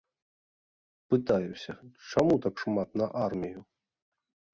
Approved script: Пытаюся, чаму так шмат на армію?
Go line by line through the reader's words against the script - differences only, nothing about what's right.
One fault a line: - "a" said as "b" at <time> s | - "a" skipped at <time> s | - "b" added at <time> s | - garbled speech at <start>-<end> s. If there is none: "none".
none